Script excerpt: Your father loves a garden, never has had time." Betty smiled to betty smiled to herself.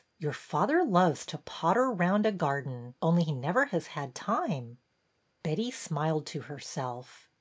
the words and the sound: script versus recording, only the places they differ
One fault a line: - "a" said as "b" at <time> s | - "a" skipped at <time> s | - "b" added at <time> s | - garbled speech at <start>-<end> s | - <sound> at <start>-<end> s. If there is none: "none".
- "to potter round" added at 1.3 s
- "only he" added at 3.0 s
- "betty smiled to" skipped at 6.4 s